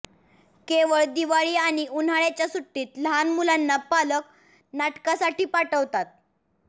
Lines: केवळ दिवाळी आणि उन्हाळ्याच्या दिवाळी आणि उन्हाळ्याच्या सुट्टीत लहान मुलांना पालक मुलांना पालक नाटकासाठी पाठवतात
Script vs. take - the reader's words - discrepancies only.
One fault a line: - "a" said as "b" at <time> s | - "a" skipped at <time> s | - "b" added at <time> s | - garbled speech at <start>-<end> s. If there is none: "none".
- "दिवाळी आणि उन्हाळ्याच्या" skipped at 2.5 s
- "मुलांना पालक" skipped at 4.3 s